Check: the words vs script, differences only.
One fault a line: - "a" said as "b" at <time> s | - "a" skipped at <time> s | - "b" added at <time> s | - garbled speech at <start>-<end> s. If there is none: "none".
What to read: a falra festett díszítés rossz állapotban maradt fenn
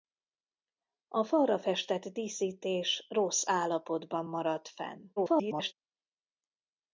- garbled speech at 5.2-5.7 s